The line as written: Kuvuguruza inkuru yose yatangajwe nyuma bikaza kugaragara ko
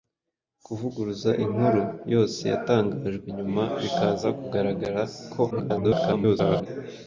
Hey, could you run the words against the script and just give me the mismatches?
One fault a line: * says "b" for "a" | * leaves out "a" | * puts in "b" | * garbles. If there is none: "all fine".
* garbles